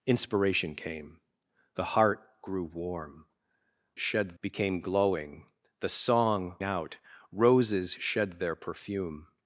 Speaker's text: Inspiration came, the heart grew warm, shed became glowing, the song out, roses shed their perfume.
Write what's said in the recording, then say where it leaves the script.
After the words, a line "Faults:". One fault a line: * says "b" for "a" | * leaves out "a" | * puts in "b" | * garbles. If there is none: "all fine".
Inspiration came, the heart grew warm, shed became glowing, the song out, roses shed their perfume.
Faults:
all fine